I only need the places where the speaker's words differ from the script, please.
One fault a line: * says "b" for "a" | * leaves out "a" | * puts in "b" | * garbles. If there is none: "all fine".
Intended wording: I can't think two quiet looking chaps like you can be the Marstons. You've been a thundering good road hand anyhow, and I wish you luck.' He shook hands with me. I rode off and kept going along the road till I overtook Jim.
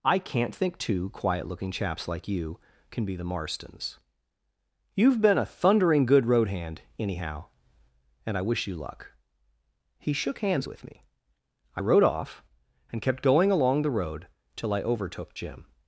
all fine